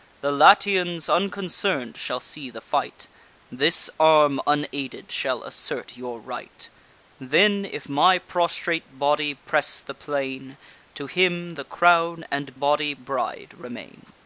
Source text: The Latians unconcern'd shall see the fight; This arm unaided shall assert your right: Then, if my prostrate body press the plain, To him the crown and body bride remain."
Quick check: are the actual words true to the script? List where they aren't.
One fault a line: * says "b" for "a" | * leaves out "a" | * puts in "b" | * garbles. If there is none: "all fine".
all fine